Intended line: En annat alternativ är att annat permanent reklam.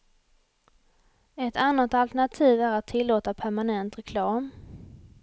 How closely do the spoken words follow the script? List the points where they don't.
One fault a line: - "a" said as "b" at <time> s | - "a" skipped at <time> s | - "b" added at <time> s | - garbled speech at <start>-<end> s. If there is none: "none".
- "En" said as "Ett" at 1.4 s
- "annat" said as "tillåta" at 2.9 s